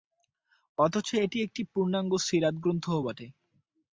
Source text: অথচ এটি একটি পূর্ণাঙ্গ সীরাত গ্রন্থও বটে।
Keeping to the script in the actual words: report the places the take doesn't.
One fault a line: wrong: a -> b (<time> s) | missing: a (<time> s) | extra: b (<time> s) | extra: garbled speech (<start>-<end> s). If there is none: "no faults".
no faults